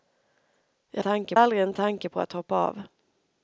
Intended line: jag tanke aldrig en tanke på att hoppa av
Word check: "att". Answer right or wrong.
right